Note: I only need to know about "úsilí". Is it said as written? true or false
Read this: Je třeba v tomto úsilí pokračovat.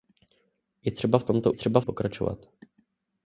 false